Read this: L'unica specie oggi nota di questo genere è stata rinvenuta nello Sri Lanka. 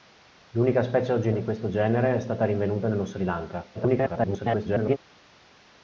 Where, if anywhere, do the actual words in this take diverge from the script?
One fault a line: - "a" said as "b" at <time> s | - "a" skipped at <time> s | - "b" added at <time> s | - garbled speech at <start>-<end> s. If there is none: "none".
- "nota" skipped at 1.3 s
- garbled speech at 3.7-5.0 s